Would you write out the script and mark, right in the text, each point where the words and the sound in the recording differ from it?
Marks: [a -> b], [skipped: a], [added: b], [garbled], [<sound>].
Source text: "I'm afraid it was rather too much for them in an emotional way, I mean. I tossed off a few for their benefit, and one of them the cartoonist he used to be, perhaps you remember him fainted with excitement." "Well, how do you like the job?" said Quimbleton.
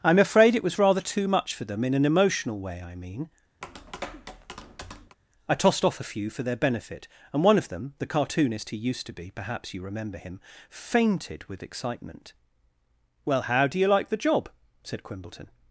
"I'm afraid it was rather too much for them in an emotional way, I mean. [tap] I tossed off a few for their benefit, and one of them the cartoonist he used to be, perhaps you remember him fainted with excitement." "Well, how do you like the job?" said Quimbleton.